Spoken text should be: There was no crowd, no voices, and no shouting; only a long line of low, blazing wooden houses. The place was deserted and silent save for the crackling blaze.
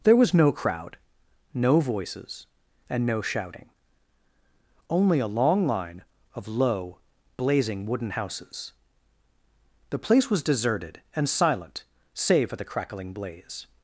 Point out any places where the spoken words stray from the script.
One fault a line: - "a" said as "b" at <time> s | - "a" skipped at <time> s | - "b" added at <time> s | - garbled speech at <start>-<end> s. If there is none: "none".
none